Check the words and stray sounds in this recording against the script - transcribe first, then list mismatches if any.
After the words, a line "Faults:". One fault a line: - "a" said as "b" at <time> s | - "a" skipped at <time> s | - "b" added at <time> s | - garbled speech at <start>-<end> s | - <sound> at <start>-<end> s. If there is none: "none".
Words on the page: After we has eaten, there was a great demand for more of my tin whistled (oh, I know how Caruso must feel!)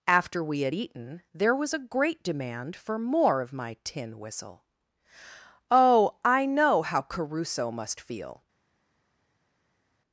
After we had eaten, there was a great demand for more of my tin whistle (oh, I know how Caruso must feel!)
Faults:
- "has" said as "had" at 0.6 s
- "whistled" said as "whistle" at 4.2 s